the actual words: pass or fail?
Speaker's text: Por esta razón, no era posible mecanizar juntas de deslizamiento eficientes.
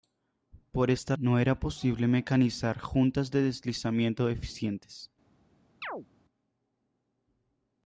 fail